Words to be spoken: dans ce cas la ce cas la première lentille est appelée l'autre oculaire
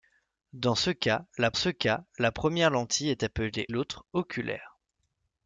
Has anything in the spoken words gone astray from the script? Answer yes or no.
no